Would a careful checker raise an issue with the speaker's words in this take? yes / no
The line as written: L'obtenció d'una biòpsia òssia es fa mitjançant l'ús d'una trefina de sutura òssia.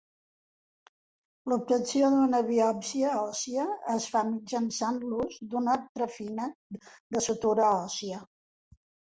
no